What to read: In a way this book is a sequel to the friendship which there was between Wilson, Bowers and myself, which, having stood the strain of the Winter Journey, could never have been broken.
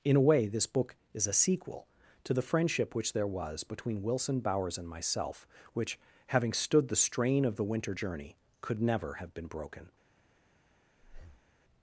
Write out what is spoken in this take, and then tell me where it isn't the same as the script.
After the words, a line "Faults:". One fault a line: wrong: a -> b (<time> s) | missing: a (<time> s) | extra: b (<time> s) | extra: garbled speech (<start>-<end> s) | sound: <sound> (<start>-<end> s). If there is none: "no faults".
In a way this book is a sequel to the friendship which there was between Wilson, Bowers and myself, which, having stood the strain of the Winter Journey, could never have been broken.
Faults:
sound: breath (11.0-11.5 s)